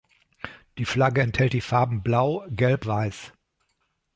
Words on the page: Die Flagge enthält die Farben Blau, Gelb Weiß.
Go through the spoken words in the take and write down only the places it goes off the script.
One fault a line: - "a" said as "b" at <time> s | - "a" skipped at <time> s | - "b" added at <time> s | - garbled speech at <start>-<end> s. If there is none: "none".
none